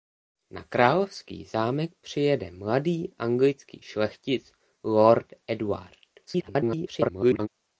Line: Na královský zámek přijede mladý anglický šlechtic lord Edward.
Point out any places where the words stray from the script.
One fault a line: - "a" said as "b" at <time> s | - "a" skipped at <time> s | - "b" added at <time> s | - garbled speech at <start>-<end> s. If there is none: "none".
- garbled speech at 6.3-7.5 s